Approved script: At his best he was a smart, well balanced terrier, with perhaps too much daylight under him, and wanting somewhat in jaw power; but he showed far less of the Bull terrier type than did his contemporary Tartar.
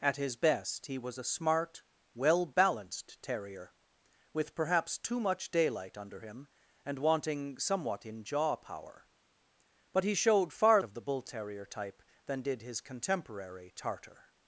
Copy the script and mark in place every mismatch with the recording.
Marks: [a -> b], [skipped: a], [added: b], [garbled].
At his best he was a smart, well balanced terrier, with perhaps too much daylight under him, and wanting somewhat in jaw power; but he showed far [skipped: less] of the Bull terrier type than did his contemporary Tartar.